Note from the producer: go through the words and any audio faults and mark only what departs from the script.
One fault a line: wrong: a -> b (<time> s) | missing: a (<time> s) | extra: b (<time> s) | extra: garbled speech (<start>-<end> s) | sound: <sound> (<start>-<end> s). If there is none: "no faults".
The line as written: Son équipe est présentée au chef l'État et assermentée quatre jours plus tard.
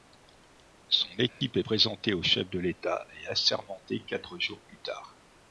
sound: dropout (1.3-1.4 s)
extra: de (2.5 s)